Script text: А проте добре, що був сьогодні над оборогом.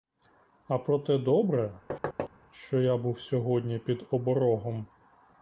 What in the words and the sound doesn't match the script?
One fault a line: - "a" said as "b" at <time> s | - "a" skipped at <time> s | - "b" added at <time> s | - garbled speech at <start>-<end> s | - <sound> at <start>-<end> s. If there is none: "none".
- thud at 1.9-2.3 s
- "я" added at 2.8 s
- "над" said as "під" at 3.8 s